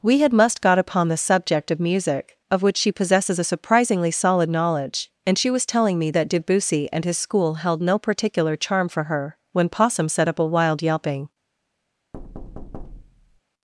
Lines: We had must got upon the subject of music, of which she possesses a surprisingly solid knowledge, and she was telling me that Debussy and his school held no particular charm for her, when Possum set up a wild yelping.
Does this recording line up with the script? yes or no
yes